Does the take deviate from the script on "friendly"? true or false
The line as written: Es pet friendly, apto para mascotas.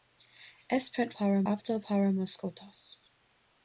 true